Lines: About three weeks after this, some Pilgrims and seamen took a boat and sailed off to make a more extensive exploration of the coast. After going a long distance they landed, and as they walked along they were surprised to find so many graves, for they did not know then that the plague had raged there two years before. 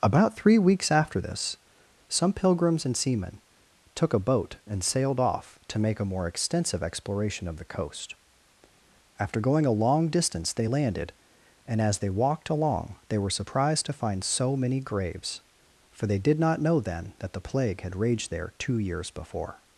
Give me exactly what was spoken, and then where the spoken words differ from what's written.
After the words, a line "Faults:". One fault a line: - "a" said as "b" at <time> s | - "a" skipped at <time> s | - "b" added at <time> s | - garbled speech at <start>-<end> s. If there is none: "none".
About three weeks after this, some Pilgrims and seamen took a boat and sailed off to make a more extensive exploration of the coast. After going a long distance they landed, and as they walked along they were surprised to find so many graves, for they did not know then that the plague had raged there two years before.
Faults:
none